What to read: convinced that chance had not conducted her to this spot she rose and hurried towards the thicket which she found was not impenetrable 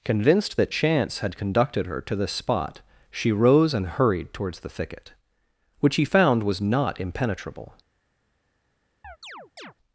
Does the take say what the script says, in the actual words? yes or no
no